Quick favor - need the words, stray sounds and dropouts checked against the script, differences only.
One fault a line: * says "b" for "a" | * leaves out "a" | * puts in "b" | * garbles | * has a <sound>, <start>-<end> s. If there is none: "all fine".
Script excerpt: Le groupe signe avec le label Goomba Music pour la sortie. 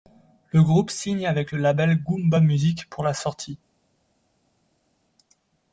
all fine